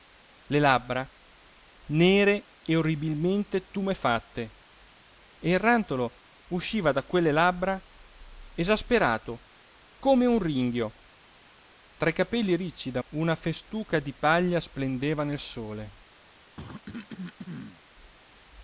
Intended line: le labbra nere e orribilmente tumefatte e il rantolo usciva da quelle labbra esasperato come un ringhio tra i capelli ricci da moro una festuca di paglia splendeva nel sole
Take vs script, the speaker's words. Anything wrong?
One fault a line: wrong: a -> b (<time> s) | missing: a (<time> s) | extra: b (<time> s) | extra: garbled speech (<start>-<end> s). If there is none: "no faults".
missing: moro (13.0 s)